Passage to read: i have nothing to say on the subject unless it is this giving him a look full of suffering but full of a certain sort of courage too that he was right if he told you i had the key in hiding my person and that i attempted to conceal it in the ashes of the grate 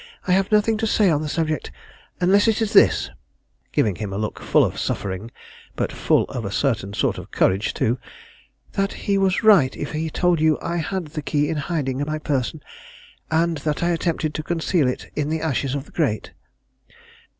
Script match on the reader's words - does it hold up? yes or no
yes